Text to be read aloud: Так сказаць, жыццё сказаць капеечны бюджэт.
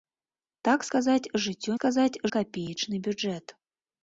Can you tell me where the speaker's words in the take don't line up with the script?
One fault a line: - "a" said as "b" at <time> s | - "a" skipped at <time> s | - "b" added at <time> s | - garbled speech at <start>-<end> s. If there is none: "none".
none